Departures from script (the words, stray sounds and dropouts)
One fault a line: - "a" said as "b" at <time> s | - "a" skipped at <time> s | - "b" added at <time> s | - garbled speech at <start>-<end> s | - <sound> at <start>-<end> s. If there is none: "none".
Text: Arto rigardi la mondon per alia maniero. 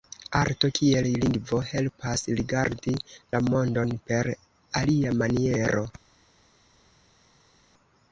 - "kiel lingvo helpas" added at 0.8 s